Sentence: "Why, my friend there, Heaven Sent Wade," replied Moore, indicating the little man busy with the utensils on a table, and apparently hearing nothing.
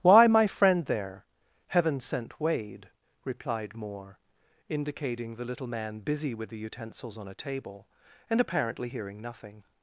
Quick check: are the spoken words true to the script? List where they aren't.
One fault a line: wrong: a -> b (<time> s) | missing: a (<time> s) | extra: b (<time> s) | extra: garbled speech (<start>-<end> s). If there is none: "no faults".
no faults